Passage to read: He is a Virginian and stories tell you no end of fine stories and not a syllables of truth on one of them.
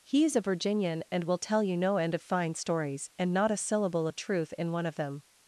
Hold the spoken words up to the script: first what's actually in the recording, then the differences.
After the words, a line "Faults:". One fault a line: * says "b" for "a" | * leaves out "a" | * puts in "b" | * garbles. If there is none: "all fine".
He is a Virginian and will tell you no end of fine stories and not a syllable of truth in one of them.
Faults:
* says "will" for "stories"
* says "syllable" for "syllables"
* says "in" for "on"